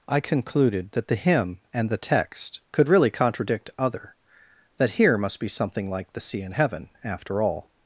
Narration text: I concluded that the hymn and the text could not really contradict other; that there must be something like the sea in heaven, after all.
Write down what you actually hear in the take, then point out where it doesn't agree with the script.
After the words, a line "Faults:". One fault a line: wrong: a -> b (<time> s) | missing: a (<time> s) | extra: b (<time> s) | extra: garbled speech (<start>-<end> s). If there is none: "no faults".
I concluded that the hymn and the text could really contradict other; that here must be something like the sea in heaven, after all.
Faults:
missing: not (2.9 s)
wrong: there -> here (4.9 s)